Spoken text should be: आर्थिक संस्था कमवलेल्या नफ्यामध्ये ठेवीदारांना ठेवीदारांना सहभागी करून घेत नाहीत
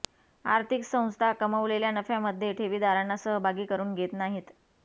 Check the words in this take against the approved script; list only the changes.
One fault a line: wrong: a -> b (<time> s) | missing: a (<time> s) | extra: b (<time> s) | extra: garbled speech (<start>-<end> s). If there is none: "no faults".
missing: ठेवीदारांना (3.2 s)